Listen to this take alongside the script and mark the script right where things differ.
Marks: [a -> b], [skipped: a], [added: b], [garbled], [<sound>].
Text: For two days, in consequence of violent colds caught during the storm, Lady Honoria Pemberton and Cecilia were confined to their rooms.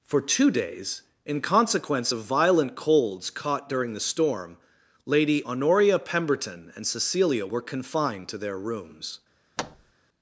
For two days, in consequence of violent colds caught during the storm, Lady Honoria Pemberton and Cecilia were confined to their rooms. [thud]